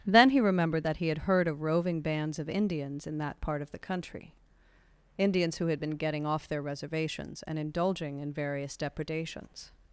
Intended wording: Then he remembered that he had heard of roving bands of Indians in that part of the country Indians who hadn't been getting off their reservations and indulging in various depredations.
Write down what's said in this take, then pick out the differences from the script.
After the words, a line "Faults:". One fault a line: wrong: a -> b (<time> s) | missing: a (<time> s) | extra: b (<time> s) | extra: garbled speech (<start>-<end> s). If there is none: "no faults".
Then he remembered that he had heard of roving bands of Indians in that part of the country Indians who had been getting off their reservations and indulging in various depredations.
Faults:
wrong: hadn't -> had (5.7 s)